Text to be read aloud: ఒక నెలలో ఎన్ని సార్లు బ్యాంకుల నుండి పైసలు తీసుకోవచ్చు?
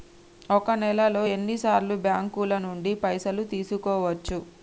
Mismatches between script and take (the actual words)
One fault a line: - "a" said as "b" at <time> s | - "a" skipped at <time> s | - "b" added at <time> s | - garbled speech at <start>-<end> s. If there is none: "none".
none